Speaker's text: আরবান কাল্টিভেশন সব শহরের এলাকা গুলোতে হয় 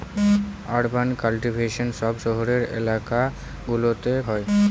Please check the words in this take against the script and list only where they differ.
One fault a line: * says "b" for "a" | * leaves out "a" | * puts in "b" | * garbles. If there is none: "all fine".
all fine